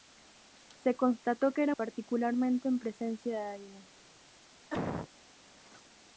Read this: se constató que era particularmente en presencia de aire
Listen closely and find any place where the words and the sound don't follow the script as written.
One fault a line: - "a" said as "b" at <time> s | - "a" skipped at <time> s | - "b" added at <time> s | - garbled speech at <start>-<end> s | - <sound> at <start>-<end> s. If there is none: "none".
- cough at 4.7-5.1 s